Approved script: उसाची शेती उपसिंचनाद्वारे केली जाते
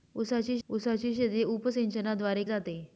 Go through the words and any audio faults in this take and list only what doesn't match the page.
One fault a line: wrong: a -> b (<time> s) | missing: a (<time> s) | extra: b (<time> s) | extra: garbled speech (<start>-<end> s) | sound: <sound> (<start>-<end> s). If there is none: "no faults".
extra: उसाची (0.7 s)
missing: केली (2.4 s)